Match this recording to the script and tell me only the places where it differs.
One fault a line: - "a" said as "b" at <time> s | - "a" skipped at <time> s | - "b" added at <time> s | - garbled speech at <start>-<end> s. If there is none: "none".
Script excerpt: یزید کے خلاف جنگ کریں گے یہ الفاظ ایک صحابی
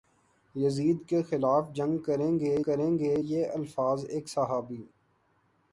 - "کریں گے" added at 2.6 s